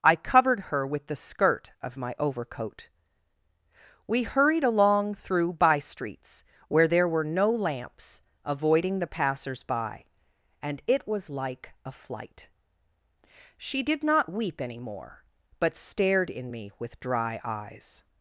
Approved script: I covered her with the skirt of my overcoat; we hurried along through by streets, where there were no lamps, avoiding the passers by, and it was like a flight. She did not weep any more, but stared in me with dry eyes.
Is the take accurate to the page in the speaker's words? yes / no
yes